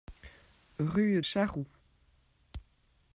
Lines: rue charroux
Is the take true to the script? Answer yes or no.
yes